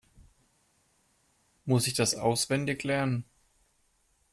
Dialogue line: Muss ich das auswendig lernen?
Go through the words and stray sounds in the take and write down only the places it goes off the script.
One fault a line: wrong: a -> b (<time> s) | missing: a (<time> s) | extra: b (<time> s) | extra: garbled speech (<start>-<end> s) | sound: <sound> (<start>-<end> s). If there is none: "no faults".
no faults